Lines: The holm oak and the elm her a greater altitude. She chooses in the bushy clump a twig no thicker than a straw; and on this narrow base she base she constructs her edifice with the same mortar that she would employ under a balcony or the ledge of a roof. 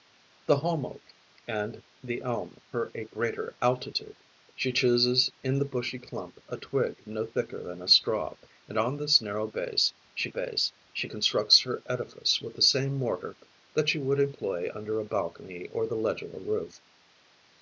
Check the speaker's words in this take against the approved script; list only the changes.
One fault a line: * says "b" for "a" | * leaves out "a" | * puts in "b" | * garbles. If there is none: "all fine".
all fine